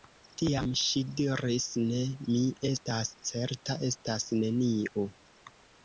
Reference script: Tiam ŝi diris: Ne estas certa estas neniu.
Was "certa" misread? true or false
false